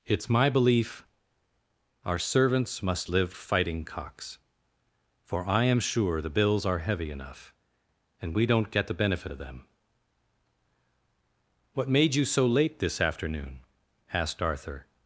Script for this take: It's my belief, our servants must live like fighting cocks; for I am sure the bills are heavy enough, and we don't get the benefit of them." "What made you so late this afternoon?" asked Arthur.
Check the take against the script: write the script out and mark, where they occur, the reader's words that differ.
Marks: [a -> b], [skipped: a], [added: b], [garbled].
It's my belief, our servants must live [skipped: like] fighting cocks; for I am sure the bills are heavy enough, and we don't get the benefit of them." "What made you so late this afternoon?" asked Arthur.